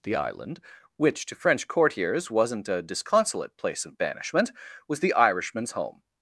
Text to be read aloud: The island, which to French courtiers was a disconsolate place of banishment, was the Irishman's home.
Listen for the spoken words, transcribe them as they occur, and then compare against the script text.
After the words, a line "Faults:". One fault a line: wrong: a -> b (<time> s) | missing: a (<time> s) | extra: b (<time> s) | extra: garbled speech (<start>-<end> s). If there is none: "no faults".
The island, which to French courtiers wasn't a disconsolate place of banishment, was the Irishman's home.
Faults:
wrong: was -> wasn't (2.3 s)